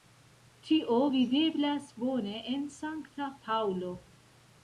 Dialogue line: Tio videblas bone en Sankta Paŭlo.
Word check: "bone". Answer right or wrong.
right